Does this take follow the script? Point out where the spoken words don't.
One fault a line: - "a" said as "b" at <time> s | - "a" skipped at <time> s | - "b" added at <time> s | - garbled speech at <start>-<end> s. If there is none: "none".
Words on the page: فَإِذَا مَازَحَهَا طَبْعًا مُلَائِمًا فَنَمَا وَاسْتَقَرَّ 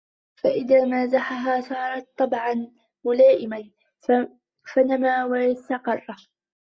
- "صَارَتْ" added at 1.6 s